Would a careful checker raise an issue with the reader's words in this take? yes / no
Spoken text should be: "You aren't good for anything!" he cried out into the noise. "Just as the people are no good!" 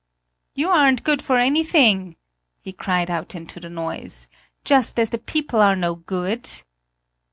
no